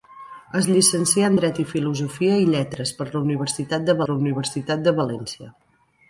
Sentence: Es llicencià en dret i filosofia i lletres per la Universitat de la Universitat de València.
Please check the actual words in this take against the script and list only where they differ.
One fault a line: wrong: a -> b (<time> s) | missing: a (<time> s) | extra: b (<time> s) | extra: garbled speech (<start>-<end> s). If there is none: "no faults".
no faults